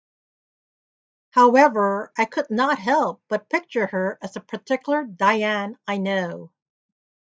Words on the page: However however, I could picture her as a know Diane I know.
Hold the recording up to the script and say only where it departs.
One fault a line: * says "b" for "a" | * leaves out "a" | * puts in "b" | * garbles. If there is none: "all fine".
* leaves out "however"
* puts in "not help but"
* says "particular" for "know"